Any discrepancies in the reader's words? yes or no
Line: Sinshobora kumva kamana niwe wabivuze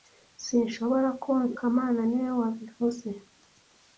no